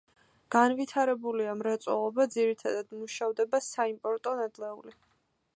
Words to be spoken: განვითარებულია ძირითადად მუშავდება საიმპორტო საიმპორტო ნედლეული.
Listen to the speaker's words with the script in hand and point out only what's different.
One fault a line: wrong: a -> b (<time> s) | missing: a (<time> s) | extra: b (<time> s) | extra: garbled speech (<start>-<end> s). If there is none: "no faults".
extra: მრეწველობა (1.6 s)
missing: საიმპორტო (4.4 s)